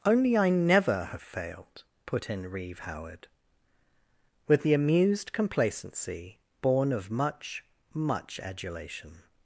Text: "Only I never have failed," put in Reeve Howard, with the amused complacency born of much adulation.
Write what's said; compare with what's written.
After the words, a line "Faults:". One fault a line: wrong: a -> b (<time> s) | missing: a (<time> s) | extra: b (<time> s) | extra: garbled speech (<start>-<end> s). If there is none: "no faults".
"Only I never have failed," put in Reeve Howard, with the amused complacency born of much much adulation.
Faults:
extra: much (7.9 s)